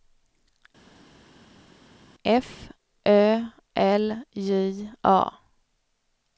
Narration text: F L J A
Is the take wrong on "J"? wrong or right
right